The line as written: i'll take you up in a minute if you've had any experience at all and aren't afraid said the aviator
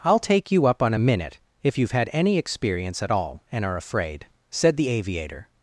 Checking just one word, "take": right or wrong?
right